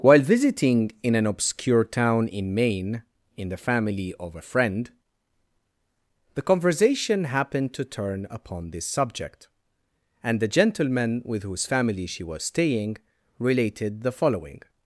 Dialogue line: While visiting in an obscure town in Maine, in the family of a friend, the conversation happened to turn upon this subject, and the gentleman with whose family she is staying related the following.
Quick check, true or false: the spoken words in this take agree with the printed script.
false